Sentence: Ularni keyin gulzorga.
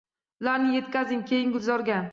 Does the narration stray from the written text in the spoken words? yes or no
yes